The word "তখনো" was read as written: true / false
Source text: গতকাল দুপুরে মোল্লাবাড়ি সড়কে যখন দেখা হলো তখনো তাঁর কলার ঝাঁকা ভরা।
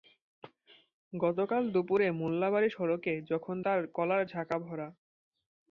false